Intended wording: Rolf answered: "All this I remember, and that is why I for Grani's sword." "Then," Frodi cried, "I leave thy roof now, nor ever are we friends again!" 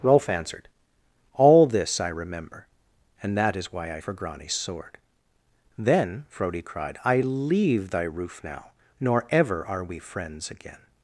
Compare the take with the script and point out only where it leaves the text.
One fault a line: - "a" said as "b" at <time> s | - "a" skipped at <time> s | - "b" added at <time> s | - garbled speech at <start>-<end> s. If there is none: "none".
none